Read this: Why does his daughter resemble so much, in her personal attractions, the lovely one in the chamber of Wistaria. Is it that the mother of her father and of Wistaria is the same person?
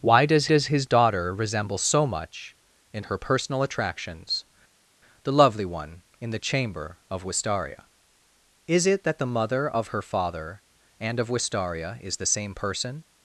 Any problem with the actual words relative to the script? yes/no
yes